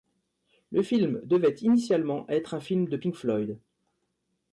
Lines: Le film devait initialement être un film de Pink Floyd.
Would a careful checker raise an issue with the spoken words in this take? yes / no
no